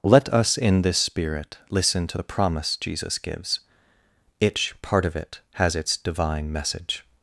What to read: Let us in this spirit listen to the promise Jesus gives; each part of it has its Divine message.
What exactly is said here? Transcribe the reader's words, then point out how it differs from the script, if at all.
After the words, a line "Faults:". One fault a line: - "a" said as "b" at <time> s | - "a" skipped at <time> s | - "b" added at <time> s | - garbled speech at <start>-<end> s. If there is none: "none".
Let us in this spirit listen to the promise Jesus gives; each part of it has its Divine message.
Faults:
none